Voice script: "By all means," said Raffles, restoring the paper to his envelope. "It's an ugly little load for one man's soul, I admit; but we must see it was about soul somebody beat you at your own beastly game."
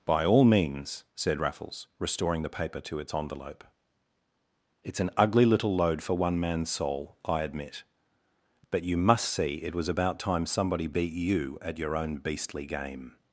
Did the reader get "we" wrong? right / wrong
wrong